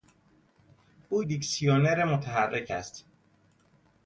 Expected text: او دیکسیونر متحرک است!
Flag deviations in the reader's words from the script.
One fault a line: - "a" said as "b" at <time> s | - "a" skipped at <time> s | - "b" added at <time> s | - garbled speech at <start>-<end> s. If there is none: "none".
none